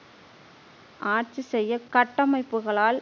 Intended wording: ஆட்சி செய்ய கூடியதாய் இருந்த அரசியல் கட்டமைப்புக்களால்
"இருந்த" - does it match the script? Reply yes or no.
no